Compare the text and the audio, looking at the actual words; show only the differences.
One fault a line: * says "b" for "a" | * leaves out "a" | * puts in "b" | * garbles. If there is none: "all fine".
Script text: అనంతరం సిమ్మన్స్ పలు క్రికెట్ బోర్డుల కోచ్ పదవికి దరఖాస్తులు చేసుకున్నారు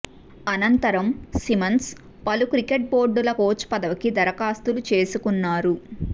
all fine